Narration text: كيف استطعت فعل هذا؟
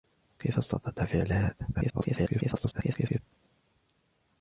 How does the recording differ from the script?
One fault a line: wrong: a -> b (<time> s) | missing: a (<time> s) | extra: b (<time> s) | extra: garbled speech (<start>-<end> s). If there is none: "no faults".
extra: garbled speech (1.7-3.2 s)